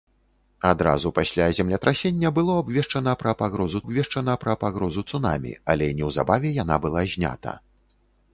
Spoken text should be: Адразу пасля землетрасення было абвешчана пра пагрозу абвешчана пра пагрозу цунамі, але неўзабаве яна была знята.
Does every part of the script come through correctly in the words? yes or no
yes